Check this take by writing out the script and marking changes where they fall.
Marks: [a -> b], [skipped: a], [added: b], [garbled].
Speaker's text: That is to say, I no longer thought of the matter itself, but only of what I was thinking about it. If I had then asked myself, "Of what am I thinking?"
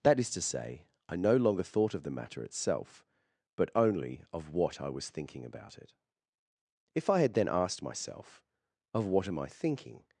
That is to say, I no longer thought of the matter itself, but only of what I was thinking about it. If I had then asked myself, "Of what am I thinking?"